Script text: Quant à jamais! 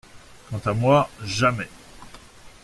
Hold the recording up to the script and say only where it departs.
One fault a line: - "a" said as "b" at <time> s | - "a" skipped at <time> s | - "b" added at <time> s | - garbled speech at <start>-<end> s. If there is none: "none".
- "moi" added at 0.7 s